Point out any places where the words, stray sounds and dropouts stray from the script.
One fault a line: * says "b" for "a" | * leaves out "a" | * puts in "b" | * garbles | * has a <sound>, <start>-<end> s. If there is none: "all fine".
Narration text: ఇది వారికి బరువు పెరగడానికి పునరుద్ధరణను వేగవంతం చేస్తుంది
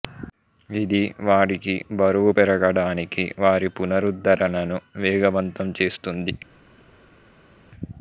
* puts in "వారి"